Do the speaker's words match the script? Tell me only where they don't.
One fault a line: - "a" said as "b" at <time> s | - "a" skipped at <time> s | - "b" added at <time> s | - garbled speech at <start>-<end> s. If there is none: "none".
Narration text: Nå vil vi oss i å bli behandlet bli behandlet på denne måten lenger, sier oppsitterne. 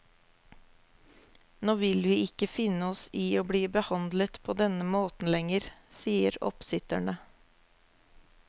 - "ikke finne" added at 2.2 s
- "bli behandlet" skipped at 4.4 s